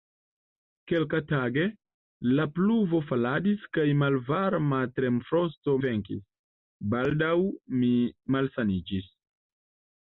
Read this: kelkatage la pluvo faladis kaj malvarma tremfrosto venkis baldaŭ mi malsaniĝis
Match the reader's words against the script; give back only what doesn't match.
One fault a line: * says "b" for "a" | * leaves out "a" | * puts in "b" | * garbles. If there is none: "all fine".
all fine